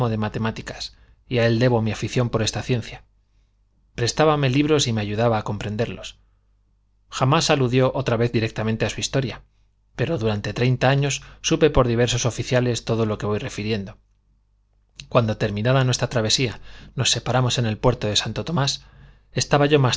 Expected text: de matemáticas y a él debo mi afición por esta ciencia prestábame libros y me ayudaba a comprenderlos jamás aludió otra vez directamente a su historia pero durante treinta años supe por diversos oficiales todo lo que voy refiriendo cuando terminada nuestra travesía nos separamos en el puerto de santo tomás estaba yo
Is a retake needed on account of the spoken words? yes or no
no